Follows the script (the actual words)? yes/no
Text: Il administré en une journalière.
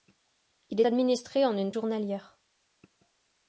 yes